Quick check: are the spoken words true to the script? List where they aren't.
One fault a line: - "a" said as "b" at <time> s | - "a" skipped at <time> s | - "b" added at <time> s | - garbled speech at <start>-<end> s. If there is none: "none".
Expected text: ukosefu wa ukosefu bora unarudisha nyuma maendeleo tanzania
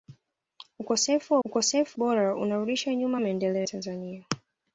none